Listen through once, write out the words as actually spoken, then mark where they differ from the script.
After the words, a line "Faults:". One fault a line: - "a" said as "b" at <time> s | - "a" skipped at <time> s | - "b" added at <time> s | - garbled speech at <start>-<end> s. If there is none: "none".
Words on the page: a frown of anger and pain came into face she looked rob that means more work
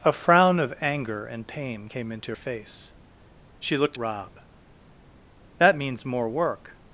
a frown of anger and pain came into face she looked rob that means more work
Faults:
none